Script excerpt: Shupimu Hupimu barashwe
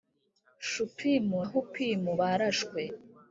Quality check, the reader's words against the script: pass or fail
pass